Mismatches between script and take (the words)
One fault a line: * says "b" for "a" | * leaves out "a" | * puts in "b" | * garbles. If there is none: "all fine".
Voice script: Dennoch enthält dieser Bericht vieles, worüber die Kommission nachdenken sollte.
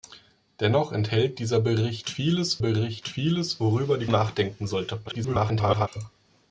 * puts in "Bericht vieles"
* leaves out "Kommission"
* garbles